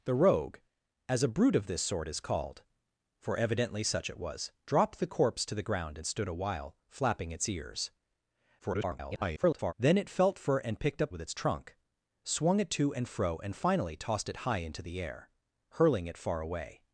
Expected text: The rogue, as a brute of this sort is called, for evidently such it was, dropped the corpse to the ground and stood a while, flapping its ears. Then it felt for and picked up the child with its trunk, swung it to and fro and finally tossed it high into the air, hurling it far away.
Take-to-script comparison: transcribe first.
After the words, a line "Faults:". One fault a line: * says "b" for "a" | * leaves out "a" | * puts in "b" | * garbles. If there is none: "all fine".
The rogue, as a brute of this sort is called, for evidently such it was, dropped the corpse to the ground and stood a while, flapping its ears. [garbled] Then it felt for and picked up with its trunk, swung it to and fro and finally tossed it high into the air, hurling it far away.
Faults:
* garbles
* leaves out "the child"